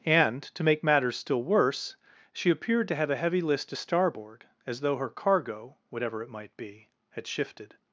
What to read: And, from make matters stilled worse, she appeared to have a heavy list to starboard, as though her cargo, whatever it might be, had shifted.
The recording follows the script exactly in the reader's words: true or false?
false